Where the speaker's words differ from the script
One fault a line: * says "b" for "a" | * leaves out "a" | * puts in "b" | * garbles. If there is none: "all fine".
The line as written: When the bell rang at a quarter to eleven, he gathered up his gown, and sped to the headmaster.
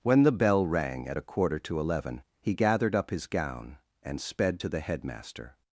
all fine